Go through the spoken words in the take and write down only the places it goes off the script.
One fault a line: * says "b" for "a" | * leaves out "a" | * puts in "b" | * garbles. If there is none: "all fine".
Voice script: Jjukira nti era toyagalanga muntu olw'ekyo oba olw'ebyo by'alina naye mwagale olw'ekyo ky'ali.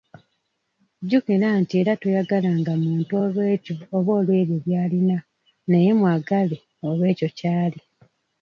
all fine